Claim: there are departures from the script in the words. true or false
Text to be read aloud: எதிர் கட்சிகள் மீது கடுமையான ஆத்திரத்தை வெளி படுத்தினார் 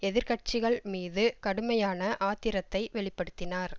false